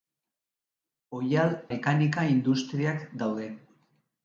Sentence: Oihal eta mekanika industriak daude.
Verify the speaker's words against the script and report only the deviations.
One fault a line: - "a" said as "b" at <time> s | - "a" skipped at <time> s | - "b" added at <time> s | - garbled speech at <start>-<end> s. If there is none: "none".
- "eta" skipped at 1.5 s